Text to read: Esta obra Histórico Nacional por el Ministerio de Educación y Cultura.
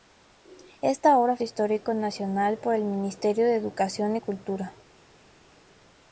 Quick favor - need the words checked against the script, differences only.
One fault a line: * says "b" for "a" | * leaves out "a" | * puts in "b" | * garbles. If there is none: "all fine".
all fine